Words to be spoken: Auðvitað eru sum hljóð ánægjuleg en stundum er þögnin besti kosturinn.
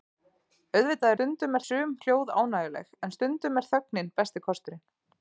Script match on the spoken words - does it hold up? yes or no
no